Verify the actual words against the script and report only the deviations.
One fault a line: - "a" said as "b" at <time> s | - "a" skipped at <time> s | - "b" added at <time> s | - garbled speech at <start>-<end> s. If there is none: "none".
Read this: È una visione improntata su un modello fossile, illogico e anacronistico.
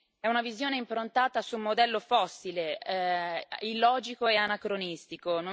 none